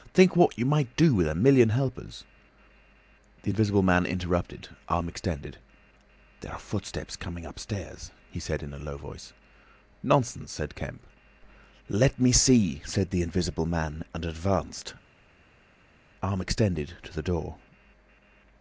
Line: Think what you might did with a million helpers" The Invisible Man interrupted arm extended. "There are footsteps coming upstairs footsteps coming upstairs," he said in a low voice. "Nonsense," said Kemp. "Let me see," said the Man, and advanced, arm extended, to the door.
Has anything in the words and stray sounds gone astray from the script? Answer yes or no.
yes